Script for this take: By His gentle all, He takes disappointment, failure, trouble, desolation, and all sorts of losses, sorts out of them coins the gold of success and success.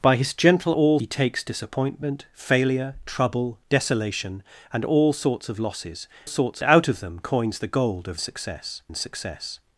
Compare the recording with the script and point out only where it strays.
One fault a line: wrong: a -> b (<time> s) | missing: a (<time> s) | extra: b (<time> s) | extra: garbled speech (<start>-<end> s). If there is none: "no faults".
no faults